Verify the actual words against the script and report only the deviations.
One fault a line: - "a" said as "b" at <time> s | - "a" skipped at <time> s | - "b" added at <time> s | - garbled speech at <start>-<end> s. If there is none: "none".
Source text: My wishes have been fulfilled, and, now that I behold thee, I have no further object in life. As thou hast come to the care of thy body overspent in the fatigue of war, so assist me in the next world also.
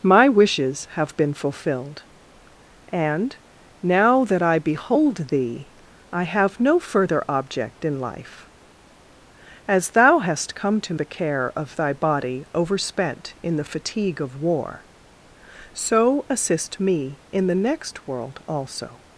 none